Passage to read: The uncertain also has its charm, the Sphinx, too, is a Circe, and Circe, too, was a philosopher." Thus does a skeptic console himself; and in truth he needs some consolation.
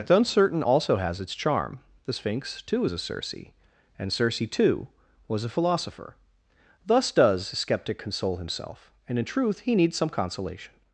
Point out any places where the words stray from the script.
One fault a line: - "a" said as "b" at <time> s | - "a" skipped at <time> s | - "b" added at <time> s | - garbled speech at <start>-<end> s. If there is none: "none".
none